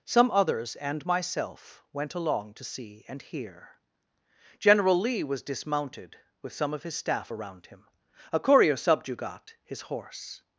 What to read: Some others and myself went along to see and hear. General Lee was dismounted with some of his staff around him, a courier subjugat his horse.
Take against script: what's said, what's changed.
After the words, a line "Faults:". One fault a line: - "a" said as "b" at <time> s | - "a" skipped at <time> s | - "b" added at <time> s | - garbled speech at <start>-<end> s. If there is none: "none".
Some others and myself went along to see and hear. General Lee was dismounted with some of his staff around him, a courier subjugat his horse.
Faults:
none